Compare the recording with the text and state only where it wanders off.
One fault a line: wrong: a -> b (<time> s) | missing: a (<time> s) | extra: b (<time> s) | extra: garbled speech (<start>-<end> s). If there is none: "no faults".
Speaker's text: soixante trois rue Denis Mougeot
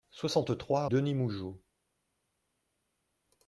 missing: rue (0.9 s)